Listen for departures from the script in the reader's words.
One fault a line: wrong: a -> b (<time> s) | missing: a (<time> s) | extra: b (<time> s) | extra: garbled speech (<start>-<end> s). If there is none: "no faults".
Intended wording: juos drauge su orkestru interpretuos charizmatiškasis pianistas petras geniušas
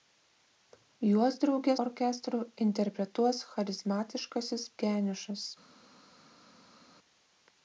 missing: su (1.8 s)
missing: pianistas petras (4.7 s)